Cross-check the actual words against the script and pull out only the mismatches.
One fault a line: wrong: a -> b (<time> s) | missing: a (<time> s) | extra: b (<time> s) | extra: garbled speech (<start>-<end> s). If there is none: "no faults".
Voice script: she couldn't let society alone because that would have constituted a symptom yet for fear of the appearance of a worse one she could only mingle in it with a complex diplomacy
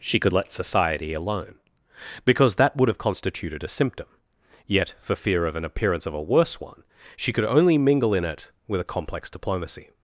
wrong: couldn't -> could (0.2 s)
wrong: the -> an (5.6 s)